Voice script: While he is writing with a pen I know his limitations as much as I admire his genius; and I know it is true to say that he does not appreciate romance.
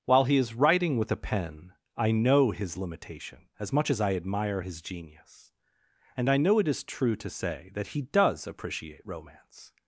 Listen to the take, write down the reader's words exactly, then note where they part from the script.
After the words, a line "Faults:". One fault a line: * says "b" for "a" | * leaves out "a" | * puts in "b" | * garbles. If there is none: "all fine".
While he is writing with a pen I know his limitation as much as I admire his genius; and I know it is true to say that he does appreciate romance.
Faults:
* says "limitation" for "limitations"
* leaves out "not"